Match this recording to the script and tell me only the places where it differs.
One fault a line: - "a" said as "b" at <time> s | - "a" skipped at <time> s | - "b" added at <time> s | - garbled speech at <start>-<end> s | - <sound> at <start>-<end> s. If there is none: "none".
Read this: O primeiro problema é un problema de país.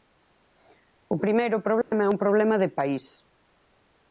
- dropout at 1.8-1.9 s